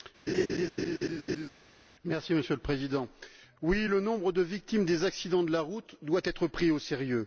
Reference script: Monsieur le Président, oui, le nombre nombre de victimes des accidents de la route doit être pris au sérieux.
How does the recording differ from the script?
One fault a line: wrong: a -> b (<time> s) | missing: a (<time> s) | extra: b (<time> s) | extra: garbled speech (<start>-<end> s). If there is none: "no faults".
missing: nombre (4.3 s)